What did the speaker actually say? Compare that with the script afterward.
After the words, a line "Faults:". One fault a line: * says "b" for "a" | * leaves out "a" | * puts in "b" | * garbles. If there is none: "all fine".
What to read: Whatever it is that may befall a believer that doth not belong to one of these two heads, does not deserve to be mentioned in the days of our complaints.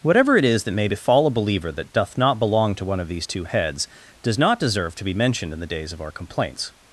Whatever it is that may befall a believer that doth not belong to one of these two heads, does not deserve to be mentioned in the days of our complaints.
Faults:
all fine